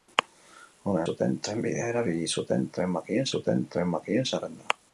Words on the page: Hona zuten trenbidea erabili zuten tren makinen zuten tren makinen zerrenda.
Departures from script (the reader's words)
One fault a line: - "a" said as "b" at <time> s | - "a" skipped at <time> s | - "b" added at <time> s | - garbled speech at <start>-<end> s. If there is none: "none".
none